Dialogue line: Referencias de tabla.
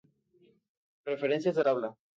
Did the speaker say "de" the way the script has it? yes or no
yes